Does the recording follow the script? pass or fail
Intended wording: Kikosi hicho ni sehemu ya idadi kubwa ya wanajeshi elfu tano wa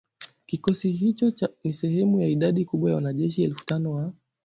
pass